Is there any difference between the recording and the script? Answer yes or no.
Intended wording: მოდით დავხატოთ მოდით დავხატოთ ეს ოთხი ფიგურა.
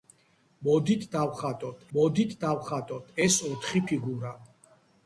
no